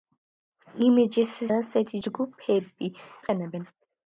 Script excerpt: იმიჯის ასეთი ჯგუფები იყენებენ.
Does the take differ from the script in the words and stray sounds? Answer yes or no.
no